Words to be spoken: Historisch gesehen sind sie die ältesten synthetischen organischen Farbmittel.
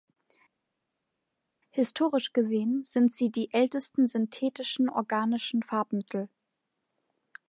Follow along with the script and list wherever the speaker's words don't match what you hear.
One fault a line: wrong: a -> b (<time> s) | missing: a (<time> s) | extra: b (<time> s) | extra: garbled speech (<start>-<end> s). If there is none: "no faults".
no faults